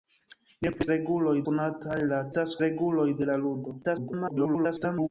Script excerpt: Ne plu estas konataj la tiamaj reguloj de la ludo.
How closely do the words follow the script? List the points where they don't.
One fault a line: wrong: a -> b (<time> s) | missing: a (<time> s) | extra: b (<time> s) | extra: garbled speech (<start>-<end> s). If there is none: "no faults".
wrong: estas -> reguloj (0.9 s)
wrong: tiamaj -> estas (2.3 s)
extra: garbled speech (3.8-5.1 s)